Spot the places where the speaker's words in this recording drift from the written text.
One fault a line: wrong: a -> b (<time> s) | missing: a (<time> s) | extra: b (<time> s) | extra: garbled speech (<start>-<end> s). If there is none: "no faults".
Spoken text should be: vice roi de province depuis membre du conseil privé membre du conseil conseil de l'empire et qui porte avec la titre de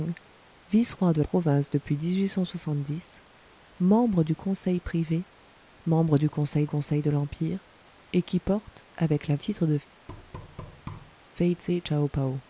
no faults